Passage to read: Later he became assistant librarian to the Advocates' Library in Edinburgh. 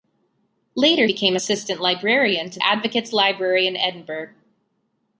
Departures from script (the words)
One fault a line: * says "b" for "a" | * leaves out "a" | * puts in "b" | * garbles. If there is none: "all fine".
* leaves out "he"
* leaves out "the"